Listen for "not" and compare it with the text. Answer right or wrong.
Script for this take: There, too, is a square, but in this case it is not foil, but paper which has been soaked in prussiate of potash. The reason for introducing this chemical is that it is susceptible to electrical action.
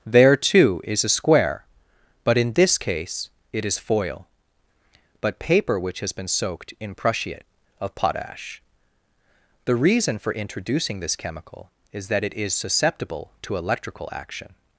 wrong